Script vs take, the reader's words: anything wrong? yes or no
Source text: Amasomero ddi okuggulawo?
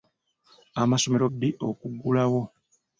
no